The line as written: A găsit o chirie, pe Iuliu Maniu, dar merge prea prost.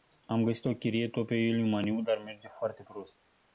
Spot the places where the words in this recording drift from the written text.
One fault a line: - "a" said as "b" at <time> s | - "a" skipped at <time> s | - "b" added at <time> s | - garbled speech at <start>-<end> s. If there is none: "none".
- "A" said as "Am" at 0.2 s
- "tot" added at 1.1 s
- "prea" said as "foarte" at 2.5 s